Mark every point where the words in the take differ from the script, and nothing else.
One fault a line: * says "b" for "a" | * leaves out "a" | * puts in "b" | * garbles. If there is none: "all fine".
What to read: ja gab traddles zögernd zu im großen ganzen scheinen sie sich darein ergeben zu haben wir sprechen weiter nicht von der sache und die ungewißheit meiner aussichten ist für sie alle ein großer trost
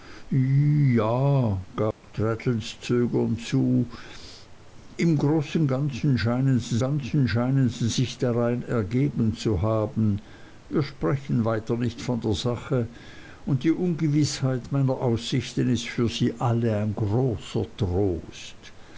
* puts in "ganzen scheinen sie"